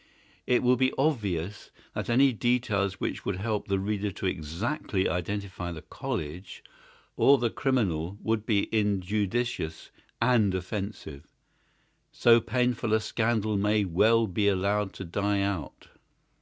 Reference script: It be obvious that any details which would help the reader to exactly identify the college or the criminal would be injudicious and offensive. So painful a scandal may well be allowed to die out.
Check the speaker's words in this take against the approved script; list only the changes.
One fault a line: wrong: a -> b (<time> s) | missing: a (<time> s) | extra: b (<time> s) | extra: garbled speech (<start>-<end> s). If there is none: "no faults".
extra: will (0.6 s)